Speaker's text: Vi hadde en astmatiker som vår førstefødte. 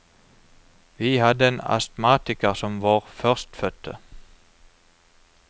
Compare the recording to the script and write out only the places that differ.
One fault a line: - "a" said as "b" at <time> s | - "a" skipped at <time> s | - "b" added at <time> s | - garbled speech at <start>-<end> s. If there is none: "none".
none